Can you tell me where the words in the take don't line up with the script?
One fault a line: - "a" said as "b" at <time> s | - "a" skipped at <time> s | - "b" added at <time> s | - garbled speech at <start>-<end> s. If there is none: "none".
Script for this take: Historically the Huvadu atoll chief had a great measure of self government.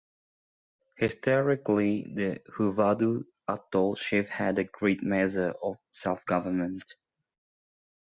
none